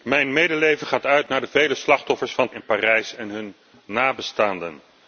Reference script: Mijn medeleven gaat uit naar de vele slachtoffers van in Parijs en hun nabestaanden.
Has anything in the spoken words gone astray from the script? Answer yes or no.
no